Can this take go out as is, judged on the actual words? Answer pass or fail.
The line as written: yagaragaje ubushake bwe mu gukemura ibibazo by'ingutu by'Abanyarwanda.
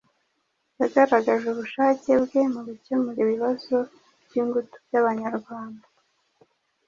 pass